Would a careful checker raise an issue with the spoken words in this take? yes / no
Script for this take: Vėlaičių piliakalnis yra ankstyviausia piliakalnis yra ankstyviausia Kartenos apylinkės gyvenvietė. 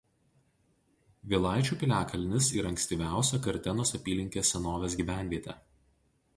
yes